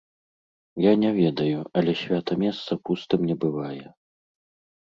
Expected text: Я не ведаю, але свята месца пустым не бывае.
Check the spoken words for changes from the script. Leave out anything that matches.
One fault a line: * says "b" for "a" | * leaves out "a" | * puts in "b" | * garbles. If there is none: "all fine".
all fine